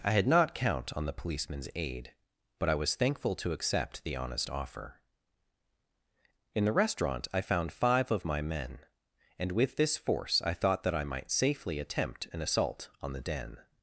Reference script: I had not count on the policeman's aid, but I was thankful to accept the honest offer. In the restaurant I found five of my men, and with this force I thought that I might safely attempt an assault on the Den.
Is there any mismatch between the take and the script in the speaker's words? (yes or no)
no